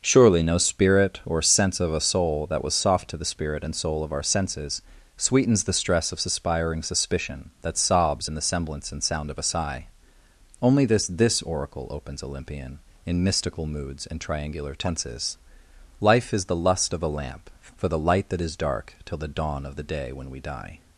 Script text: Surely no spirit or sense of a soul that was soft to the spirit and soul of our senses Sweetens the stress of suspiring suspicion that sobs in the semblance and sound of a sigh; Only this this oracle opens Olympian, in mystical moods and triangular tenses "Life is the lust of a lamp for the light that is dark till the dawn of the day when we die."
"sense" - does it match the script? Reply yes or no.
yes